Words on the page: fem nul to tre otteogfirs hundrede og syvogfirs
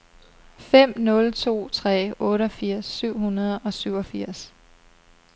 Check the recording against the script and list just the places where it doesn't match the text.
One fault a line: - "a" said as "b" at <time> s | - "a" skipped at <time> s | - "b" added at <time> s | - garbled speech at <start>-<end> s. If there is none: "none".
- "syv" added at 2.9 s